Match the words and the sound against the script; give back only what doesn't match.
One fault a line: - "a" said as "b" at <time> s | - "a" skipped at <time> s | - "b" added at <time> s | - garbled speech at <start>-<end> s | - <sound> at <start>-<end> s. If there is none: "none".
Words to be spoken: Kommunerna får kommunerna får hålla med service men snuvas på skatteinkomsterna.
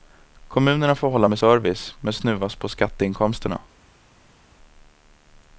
- "kommunerna får" skipped at 1.1 s